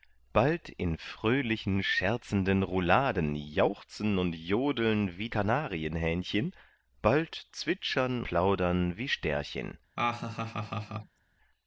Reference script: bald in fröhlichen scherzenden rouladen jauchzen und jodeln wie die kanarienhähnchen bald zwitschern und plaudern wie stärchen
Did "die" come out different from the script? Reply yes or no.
yes